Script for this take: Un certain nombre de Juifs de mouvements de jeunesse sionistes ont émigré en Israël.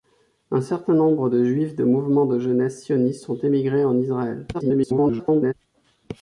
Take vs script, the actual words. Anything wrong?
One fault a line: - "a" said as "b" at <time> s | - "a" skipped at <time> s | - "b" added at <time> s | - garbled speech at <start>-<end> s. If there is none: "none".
- garbled speech at 4.5-5.5 s